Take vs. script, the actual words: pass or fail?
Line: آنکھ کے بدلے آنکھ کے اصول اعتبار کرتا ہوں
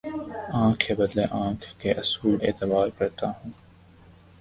pass